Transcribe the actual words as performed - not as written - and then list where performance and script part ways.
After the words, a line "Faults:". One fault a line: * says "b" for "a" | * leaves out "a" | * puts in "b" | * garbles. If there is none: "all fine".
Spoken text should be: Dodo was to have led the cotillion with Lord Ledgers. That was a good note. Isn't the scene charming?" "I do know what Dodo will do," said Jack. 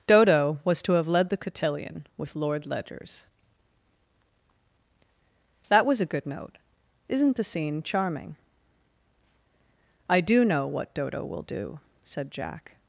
Dodo was to have led the cotillion with Lord Ledgers. That was a good note. Isn't the scene charming?" "I do know what Dodo will do," said Jack.
Faults:
all fine